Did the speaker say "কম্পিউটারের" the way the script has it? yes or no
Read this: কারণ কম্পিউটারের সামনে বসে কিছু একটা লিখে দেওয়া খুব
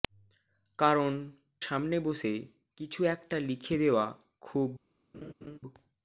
no